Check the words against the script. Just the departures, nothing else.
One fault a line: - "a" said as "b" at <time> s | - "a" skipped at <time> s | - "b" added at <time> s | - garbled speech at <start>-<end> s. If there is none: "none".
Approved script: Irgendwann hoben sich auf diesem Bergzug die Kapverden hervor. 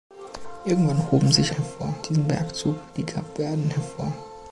- "auf" said as "hervor" at 1.5 s